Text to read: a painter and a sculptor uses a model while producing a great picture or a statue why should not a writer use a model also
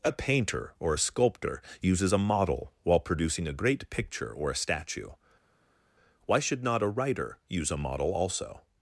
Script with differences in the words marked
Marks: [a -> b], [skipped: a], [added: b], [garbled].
a painter [and -> or] a sculptor uses a model while producing a great picture or a statue why should not a writer use a model also